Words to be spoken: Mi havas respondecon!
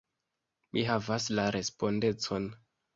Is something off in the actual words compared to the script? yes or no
yes